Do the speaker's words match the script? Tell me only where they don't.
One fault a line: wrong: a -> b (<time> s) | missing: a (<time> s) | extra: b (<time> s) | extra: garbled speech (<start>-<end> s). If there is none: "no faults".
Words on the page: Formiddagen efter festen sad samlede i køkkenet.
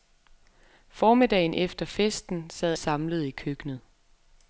no faults